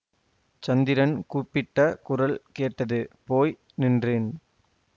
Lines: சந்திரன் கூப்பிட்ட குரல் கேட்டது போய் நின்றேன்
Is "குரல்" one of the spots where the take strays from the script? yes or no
no